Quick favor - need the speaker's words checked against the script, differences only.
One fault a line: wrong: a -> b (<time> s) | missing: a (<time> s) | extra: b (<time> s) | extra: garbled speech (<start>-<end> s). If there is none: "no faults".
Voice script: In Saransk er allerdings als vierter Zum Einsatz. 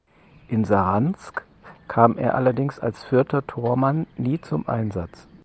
extra: kam (1.9 s)
extra: Tormann nie (3.5 s)